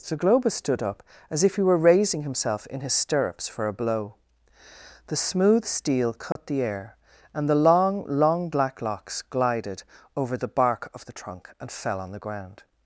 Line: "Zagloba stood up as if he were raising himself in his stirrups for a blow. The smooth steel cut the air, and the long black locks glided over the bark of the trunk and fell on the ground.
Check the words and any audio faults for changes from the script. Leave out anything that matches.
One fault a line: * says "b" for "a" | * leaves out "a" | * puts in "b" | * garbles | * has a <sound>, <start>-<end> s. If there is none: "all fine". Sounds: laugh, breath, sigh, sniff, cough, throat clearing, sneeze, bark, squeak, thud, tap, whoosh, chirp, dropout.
* has a dropout, 6.3-6.4 s
* puts in "long"